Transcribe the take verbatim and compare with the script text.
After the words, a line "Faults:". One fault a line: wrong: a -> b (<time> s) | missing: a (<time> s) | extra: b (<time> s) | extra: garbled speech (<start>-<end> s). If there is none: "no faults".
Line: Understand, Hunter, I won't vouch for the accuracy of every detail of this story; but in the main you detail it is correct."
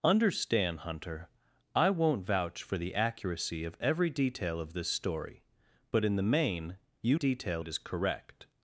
Understand, Hunter, I won't vouch for the accuracy of every detail of this story; but in the main you detail it is correct."
Faults:
no faults